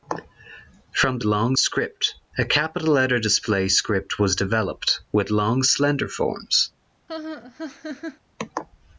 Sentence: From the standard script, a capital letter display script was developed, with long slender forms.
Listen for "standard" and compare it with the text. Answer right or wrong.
wrong